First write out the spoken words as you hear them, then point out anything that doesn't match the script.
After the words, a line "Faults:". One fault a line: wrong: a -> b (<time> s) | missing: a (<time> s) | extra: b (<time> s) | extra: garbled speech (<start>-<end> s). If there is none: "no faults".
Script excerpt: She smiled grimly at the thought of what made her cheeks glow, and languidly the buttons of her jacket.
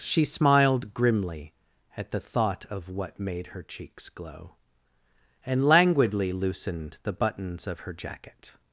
She smiled grimly at the thought of what made her cheeks glow, and languidly loosened the buttons of her jacket.
Faults:
extra: loosened (6.3 s)